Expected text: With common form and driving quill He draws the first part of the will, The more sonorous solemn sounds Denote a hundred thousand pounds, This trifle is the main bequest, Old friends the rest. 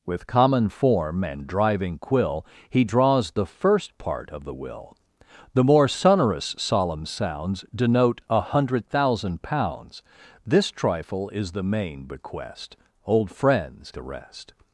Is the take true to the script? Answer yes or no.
yes